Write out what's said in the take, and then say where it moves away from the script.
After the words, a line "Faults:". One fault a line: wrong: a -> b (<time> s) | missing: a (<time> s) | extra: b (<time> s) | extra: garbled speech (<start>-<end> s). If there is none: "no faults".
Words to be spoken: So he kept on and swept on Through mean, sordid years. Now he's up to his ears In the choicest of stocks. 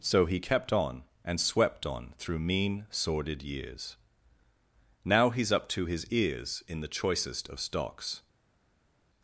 So he kept on and swept on Through mean, sordid years. Now he's up to his ears In the choicest of stocks.
Faults:
no faults